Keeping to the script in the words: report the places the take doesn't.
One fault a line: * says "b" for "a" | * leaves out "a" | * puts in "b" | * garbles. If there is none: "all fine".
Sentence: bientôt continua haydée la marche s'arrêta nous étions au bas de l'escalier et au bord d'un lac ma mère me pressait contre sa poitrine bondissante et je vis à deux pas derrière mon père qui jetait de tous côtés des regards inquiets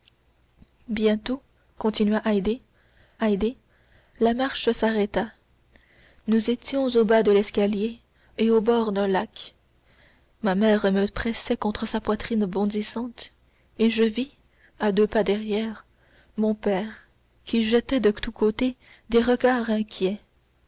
* puts in "haydée"